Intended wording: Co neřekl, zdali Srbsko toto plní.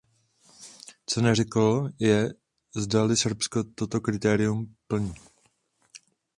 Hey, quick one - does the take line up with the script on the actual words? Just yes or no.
no